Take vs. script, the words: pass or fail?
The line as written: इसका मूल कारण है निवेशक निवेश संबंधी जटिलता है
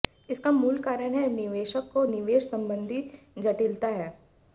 fail